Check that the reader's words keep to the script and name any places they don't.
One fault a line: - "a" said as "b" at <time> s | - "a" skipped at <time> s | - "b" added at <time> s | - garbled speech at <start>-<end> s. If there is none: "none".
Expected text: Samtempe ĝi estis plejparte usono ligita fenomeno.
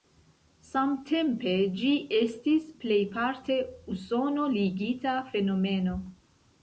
none